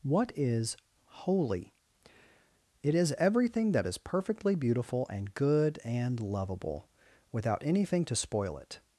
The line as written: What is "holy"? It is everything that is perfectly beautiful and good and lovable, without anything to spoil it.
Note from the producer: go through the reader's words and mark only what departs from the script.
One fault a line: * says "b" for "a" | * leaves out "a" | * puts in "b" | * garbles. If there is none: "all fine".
all fine